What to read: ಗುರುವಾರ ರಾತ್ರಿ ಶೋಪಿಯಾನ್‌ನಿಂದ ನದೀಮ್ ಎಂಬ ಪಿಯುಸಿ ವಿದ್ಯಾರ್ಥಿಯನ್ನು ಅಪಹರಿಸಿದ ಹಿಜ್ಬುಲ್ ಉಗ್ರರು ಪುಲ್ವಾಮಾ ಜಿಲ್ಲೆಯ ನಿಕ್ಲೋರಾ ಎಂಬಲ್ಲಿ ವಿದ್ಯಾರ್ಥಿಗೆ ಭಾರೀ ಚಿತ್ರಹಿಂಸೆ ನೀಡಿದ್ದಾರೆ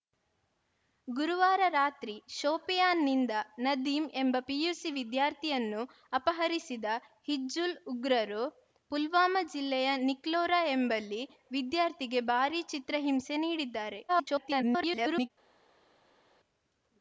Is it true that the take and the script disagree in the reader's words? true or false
true